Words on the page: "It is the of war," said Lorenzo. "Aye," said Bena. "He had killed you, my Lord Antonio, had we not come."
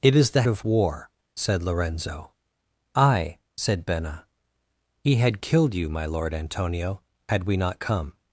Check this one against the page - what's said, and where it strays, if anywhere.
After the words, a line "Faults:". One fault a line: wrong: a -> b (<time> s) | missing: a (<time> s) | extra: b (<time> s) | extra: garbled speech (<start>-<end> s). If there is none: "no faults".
"It is the of war," said Lorenzo. "Aye," said Bena. "He had killed you, my Lord Antonio, had we not come."
Faults:
no faults